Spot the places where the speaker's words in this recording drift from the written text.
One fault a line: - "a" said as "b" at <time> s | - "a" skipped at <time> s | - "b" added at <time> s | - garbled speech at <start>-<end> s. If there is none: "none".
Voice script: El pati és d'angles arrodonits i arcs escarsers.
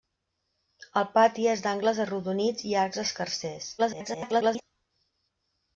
- garbled speech at 3.8-4.6 s